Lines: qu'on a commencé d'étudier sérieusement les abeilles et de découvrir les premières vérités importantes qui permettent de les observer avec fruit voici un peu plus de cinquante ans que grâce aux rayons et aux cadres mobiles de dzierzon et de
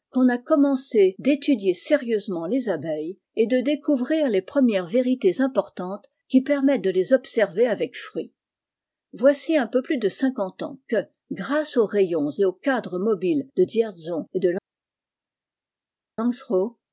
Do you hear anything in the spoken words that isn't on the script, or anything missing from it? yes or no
no